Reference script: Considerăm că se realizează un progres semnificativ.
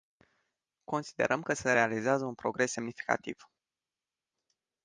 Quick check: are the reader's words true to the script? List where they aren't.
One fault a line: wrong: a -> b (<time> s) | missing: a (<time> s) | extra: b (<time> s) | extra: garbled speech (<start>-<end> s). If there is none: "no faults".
no faults